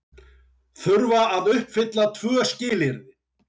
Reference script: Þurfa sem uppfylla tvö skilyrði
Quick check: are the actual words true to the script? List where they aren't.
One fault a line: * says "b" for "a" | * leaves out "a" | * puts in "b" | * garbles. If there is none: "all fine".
* says "að" for "sem"